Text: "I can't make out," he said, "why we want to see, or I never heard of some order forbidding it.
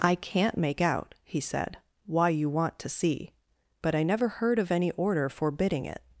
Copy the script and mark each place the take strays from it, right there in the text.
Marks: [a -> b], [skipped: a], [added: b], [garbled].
"I can't make out," he said, "why [we -> you] want to see, [or -> but] I never heard of [some -> any] order forbidding it.